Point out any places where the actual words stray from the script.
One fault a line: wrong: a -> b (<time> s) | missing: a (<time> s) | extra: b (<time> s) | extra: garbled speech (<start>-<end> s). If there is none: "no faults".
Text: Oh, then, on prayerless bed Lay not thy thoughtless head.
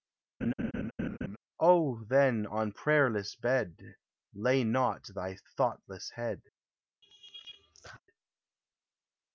no faults